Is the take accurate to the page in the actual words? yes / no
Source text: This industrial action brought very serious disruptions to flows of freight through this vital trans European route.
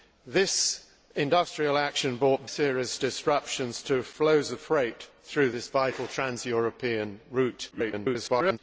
no